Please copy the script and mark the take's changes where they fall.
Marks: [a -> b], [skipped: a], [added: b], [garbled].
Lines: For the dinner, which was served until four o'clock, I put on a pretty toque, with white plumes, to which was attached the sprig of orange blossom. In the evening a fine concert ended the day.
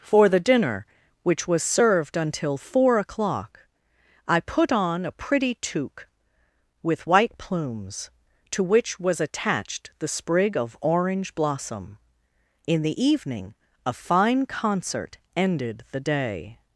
For the dinner, which was served until four o'clock, I put on a pretty toque, with white plumes, to which was attached the sprig of orange blossom. In the evening a fine concert ended the day.